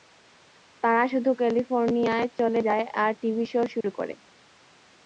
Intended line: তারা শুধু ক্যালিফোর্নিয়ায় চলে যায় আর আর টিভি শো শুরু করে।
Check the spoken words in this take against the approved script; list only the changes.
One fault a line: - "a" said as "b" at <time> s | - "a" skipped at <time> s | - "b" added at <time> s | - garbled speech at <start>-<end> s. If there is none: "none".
- "আর" skipped at 3.1 s